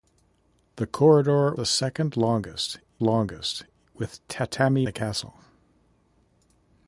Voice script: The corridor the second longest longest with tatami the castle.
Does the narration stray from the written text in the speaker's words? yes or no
no